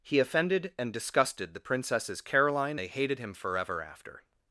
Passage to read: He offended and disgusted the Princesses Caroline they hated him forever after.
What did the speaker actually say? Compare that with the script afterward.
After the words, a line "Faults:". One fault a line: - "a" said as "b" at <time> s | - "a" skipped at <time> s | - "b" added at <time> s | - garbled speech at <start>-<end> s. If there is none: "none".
He offended and disgusted the Princesses Caroline they hated him forever after.
Faults:
none